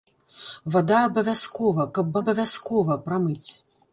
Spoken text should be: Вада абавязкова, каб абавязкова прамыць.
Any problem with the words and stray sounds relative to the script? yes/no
no